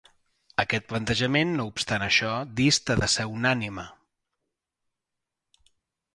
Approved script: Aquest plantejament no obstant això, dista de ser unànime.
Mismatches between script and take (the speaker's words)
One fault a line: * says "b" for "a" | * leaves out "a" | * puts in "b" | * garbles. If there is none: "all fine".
all fine